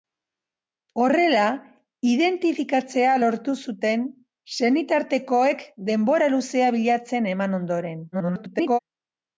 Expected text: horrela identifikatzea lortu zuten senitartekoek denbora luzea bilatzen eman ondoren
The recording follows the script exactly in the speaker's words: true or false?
false